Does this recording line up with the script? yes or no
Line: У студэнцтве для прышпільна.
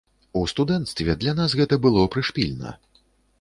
no